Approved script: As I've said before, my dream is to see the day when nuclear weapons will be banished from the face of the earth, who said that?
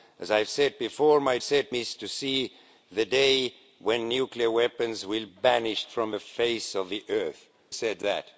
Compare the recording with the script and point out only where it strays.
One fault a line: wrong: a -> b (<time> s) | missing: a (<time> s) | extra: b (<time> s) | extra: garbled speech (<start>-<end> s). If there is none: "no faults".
wrong: dream -> said (1.4 s)
missing: be (5.3 s)
missing: who (7.5 s)